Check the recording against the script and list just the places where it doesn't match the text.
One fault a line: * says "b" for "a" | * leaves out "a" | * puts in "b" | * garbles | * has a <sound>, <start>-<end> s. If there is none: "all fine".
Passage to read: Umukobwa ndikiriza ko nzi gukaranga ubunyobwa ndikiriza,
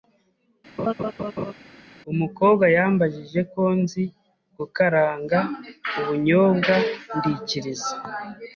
* has a laugh, 0.8-1.5 s
* says "yambajije" for "ndikiriza"